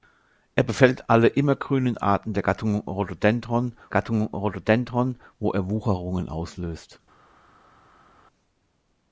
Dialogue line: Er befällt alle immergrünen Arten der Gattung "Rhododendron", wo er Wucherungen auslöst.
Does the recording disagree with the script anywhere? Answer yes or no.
yes